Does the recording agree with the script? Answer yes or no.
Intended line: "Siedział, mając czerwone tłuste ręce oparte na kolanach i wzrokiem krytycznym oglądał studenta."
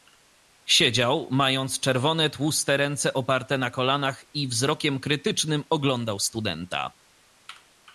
yes